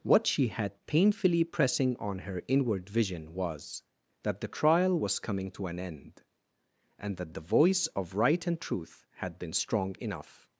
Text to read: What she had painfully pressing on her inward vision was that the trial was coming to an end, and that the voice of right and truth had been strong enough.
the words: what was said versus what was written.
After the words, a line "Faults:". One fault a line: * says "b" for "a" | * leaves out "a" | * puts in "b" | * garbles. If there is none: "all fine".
What she had painfully pressing on her inward vision was that the trial was coming to an end, and that the voice of right and truth had been strong enough.
Faults:
all fine